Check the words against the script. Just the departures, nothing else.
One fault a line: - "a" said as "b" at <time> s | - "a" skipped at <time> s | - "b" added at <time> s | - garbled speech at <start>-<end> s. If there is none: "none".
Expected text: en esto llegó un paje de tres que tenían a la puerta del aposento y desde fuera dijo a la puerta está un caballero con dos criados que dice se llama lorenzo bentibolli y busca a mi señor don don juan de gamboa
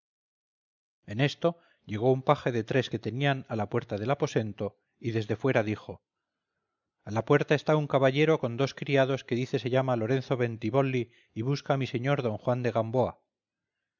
- "don" skipped at 12.4 s